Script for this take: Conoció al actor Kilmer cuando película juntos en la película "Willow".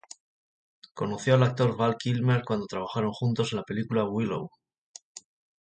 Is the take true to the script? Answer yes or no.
no